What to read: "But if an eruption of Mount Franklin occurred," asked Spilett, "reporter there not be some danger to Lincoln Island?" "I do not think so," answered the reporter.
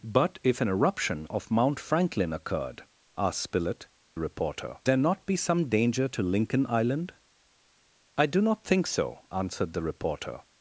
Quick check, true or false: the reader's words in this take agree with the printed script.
true